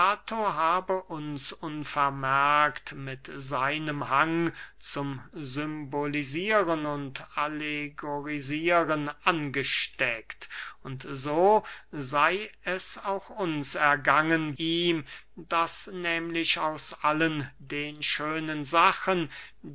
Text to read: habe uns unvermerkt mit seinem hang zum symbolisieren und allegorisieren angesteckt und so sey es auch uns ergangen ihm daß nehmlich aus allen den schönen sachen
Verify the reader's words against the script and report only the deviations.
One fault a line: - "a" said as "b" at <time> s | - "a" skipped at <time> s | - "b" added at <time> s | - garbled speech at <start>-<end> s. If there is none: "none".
none